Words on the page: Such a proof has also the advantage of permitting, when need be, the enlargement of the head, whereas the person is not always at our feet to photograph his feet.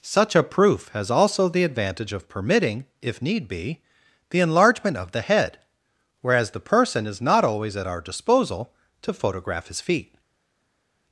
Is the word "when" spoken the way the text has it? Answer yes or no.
no